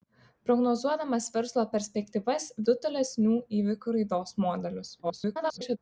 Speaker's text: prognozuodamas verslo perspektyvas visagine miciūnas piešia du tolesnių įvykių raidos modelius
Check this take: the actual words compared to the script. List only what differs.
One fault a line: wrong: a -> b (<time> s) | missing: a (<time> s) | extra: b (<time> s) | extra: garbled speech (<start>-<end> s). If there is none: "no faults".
missing: visagine miciūnas piešia (2.5 s)
extra: garbled speech (5.0-5.8 s)